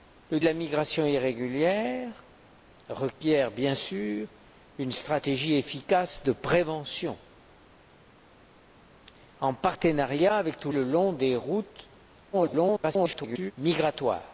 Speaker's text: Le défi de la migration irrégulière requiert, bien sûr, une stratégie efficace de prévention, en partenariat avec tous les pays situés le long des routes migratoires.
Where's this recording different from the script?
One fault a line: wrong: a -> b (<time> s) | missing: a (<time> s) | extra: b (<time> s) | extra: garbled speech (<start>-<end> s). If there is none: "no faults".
missing: défi (0.4 s)
missing: les pays situés (10.7 s)
extra: garbled speech (12.3-13.5 s)